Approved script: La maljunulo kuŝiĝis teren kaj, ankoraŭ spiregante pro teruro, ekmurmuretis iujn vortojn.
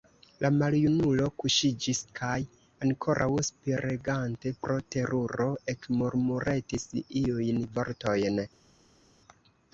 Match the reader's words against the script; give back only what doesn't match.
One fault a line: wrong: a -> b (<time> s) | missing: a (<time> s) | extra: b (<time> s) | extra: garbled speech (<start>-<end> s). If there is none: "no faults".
missing: teren (2.0 s)